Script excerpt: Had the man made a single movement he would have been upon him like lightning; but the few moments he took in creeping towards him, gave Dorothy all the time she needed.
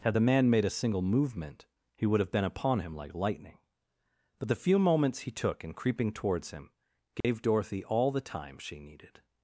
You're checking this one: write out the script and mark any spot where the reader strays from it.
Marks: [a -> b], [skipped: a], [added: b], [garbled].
Had the man made a single movement he would have been upon him like lightning; but the few moments he took in creeping towards him, gave Dorothy all the time she needed.